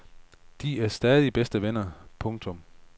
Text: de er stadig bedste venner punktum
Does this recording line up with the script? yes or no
yes